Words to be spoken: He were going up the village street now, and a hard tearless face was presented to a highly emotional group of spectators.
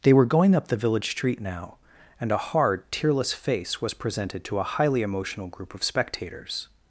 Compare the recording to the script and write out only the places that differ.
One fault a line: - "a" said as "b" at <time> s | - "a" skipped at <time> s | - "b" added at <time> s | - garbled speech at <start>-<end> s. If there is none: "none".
- "He" said as "They" at 0.0 s